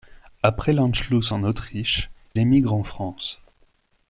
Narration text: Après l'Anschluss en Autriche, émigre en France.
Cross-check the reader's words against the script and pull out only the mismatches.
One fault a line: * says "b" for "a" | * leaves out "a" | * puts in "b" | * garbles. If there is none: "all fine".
all fine